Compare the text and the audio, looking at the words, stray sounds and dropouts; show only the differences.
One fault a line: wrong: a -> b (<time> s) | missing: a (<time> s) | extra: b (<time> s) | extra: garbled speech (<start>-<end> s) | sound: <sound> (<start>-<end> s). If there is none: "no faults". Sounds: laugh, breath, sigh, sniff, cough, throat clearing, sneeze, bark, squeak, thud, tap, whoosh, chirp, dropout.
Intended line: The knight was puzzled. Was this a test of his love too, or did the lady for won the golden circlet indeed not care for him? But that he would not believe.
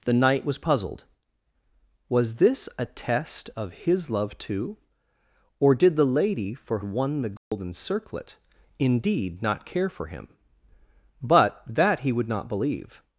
sound: dropout (7.4-7.5 s)